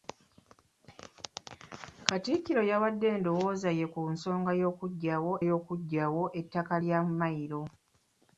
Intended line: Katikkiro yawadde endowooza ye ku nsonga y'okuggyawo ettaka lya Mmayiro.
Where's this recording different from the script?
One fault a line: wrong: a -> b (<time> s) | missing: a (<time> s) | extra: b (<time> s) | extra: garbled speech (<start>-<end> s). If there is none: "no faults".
extra: y'okuggyawo (5.5 s)